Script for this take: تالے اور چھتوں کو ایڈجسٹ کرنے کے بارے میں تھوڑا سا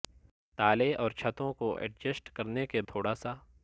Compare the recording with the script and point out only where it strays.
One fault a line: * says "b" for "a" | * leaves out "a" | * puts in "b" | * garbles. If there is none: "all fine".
* leaves out "بارے میں"